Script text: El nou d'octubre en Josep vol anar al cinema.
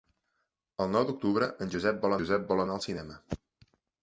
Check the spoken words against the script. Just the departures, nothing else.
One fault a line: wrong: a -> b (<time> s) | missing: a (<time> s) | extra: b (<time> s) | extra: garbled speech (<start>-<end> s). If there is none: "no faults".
extra: Josep vol (2.2 s)